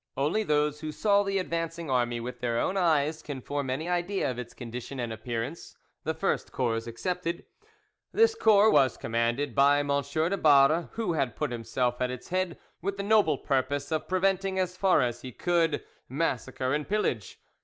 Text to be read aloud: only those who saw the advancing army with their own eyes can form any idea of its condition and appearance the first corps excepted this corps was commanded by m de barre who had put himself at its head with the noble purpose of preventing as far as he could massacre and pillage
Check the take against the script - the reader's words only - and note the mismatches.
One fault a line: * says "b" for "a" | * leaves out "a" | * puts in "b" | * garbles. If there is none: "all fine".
all fine